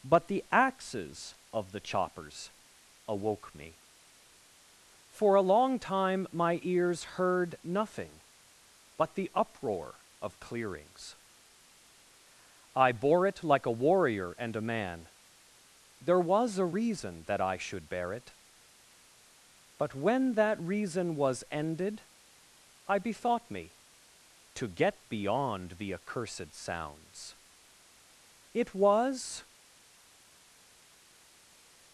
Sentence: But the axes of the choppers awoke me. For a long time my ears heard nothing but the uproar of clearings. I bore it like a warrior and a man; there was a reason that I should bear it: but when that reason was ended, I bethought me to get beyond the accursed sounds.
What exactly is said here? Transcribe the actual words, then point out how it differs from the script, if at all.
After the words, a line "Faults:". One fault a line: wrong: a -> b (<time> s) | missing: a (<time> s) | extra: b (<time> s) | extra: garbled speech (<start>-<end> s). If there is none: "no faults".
But the axes of the choppers awoke me. For a long time my ears heard nothing but the uproar of clearings. I bore it like a warrior and a man; there was a reason that I should bear it: but when that reason was ended, I bethought me to get beyond the accursed sounds. It was
Faults:
extra: It was (28.5 s)